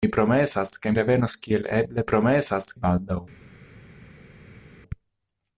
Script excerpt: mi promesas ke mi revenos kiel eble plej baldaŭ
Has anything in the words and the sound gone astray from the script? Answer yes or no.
yes